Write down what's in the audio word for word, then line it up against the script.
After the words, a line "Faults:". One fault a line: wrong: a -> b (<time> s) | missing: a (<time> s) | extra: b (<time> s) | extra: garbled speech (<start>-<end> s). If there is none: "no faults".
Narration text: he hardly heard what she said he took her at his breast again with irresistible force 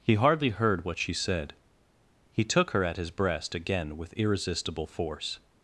he hardly heard what she said he took her at his breast again with irresistible force
Faults:
no faults